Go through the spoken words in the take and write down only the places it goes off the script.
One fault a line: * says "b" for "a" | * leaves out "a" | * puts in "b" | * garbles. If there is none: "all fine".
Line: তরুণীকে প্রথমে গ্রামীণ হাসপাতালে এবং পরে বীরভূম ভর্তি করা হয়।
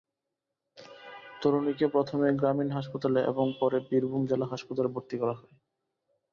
* puts in "জেলা হাসপাতালে"